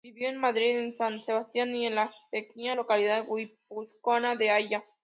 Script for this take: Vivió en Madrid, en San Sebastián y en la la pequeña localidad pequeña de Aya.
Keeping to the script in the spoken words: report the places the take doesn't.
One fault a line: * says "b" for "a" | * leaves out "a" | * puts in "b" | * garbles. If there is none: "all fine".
* leaves out "la"
* says "guipuzcoana" for "pequeña"